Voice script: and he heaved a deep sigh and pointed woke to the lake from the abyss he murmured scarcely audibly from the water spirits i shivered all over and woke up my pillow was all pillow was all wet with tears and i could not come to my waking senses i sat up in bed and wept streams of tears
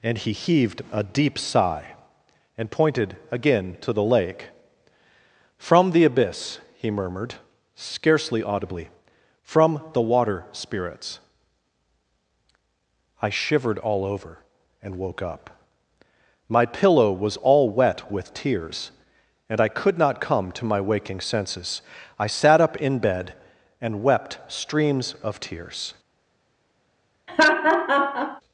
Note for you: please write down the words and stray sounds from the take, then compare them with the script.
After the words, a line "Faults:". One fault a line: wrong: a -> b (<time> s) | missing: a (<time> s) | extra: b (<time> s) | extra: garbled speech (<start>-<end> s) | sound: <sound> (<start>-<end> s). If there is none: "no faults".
and he heaved a deep sigh and pointed again to the lake from the abyss he murmured scarcely audibly from the water spirits i shivered all over and woke up my pillow was all wet with tears and i could not come to my waking senses i sat up in bed and wept streams of tears
Faults:
wrong: woke -> again (3.3 s)
missing: pillow was all (17.7 s)
sound: laugh (27.3-28.4 s)